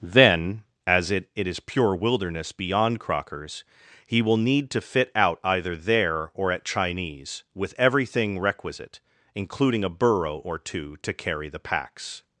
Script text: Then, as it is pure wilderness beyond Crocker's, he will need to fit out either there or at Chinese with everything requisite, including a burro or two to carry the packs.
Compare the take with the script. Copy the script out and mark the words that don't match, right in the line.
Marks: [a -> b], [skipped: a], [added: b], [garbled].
Then, as it [added: it] is pure wilderness beyond Crocker's, he will need to fit out either there or at Chinese with everything requisite, including a burro or two to carry the packs.